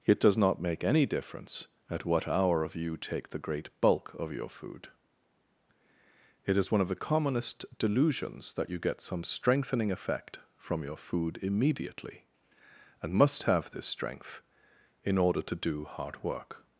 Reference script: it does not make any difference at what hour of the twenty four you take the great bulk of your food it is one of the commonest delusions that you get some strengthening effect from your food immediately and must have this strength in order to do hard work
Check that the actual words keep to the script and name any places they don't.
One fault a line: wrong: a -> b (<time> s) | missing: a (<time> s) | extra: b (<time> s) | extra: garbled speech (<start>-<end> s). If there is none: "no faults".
missing: the twenty four (2.7 s)